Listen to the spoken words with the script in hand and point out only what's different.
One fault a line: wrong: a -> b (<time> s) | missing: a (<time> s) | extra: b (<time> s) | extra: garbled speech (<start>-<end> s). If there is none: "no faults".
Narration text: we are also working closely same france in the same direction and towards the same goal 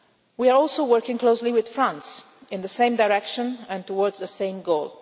wrong: same -> with (1.5 s)